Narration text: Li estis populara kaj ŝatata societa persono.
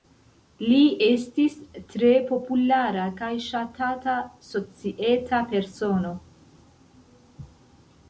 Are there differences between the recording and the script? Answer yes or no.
yes